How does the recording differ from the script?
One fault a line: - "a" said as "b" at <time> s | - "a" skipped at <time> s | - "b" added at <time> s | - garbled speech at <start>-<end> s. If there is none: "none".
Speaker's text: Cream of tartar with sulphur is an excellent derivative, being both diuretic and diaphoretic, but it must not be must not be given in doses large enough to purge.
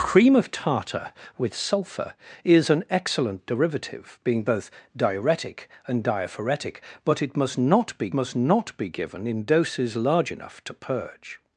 none